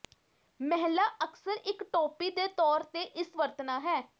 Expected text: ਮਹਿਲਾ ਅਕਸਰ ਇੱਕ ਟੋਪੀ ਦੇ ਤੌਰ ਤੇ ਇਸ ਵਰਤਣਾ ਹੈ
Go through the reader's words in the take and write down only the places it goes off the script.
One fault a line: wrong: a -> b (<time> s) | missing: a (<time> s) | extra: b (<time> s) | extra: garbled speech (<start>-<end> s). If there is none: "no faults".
no faults